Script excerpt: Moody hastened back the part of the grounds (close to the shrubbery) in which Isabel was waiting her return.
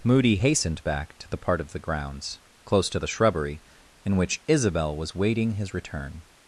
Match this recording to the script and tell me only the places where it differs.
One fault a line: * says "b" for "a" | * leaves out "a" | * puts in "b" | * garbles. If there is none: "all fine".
* puts in "to"
* says "his" for "her"